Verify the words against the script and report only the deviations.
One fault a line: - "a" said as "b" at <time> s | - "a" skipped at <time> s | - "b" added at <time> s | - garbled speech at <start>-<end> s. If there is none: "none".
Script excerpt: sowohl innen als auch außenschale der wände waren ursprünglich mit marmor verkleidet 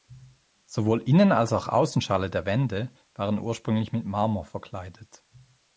none